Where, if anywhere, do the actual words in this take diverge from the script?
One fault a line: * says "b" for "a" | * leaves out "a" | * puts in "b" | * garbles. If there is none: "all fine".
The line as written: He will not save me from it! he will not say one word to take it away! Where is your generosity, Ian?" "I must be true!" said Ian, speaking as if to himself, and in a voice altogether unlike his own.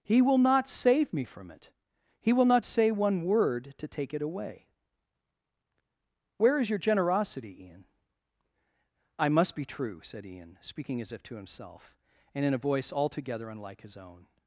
all fine